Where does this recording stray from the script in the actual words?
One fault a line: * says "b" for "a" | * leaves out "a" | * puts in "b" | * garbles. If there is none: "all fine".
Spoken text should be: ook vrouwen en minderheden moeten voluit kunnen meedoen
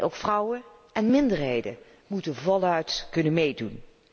all fine